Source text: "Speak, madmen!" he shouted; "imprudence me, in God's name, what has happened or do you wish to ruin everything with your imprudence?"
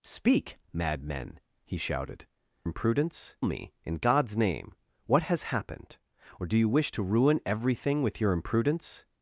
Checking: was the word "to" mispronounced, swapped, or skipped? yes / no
no